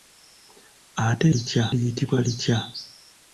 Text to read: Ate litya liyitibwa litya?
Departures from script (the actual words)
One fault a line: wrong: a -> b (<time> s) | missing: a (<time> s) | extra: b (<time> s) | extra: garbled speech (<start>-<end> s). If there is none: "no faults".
no faults